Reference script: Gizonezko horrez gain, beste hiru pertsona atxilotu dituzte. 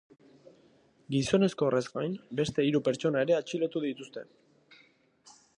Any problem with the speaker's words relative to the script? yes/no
yes